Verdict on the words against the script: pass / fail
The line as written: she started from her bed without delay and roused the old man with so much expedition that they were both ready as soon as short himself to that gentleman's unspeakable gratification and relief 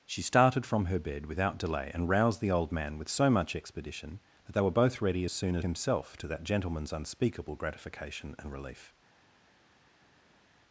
fail